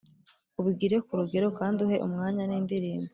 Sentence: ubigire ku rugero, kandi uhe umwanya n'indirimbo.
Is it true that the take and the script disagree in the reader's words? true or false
false